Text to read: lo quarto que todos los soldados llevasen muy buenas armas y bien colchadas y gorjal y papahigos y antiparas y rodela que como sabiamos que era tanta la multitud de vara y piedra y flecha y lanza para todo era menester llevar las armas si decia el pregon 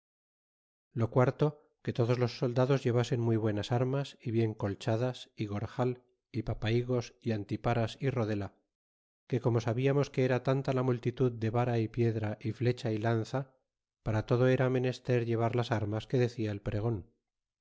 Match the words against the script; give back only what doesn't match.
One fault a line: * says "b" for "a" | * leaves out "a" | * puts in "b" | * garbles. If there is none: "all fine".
* says "que" for "si"